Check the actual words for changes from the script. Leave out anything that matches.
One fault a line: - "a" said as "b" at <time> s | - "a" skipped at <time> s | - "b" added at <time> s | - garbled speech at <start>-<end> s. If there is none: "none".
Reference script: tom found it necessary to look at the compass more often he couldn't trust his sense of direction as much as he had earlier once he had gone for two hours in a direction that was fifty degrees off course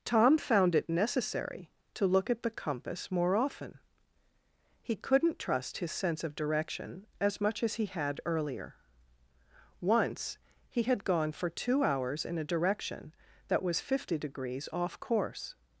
none